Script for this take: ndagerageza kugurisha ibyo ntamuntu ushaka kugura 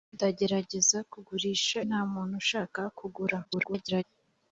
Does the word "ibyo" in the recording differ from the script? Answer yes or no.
yes